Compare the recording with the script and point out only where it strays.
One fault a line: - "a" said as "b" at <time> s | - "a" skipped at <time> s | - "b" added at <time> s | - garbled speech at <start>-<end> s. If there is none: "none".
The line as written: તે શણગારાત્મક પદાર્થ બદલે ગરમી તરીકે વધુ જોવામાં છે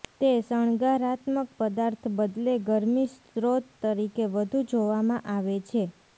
- "સ્ત્રોત" added at 3.1 s
- "આવે" added at 5.3 s